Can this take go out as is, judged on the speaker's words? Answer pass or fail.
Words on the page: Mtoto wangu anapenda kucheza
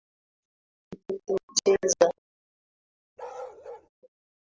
fail